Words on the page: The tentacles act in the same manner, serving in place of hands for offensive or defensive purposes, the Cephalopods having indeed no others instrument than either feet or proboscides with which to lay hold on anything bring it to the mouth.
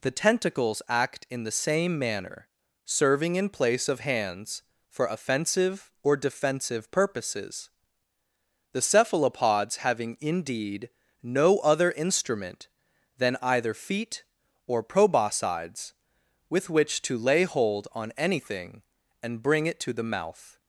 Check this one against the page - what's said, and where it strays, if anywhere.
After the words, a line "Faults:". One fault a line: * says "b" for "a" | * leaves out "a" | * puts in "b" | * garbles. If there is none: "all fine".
The tentacles act in the same manner, serving in place of hands for offensive or defensive purposes, the Cephalopods having indeed no other instrument than either feet or proboscides with which to lay hold on anything and bring it to the mouth.
Faults:
* says "other" for "others"
* puts in "and"